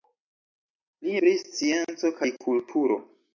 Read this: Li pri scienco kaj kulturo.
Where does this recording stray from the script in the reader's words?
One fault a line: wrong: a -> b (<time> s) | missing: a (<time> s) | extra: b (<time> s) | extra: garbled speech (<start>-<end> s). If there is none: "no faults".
no faults